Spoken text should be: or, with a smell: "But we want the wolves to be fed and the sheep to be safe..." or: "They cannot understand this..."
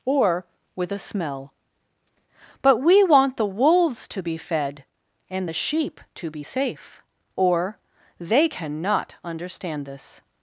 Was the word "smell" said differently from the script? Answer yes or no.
no